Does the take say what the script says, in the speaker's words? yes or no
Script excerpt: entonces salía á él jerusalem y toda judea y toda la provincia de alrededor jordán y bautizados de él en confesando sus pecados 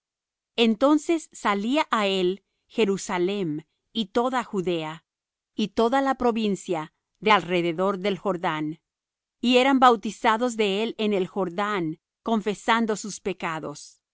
no